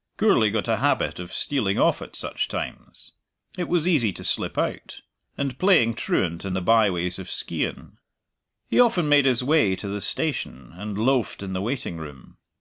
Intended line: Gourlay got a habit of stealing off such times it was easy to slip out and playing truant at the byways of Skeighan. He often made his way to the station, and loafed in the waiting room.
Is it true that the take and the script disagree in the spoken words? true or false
true